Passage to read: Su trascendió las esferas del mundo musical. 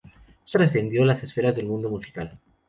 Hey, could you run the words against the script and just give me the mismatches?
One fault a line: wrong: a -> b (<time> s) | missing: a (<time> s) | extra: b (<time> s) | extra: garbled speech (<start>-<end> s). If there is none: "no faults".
no faults